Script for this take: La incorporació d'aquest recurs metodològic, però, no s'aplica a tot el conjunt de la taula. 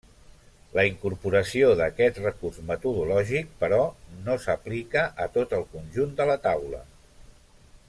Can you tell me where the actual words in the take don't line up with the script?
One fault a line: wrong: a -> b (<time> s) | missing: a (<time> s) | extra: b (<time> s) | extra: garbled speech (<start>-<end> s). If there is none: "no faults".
no faults